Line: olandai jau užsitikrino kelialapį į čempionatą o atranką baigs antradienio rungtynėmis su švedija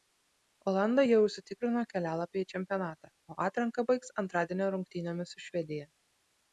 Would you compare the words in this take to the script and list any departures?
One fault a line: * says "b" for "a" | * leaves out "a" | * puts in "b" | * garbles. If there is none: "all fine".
all fine